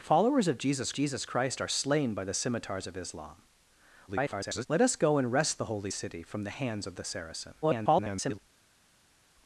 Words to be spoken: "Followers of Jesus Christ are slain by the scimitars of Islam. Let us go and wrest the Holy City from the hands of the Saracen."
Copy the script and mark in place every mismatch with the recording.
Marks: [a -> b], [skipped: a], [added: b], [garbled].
"Followers of Jesus [added: Jesus] Christ are slain by the scimitars of Islam. [garbled] Let us go and wrest the Holy City from the hands of the Saracen." [garbled]